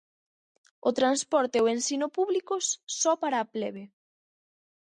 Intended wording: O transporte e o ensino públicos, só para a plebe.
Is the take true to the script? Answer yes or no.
yes